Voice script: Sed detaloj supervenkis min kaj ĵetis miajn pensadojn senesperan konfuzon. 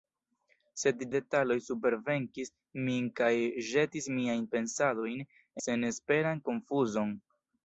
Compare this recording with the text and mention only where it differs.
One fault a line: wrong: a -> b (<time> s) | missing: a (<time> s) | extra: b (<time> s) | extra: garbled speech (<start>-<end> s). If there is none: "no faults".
no faults